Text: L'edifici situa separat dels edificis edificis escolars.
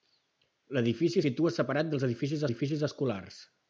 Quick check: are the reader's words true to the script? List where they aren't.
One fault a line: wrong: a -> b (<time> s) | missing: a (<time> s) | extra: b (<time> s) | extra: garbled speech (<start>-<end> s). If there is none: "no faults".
no faults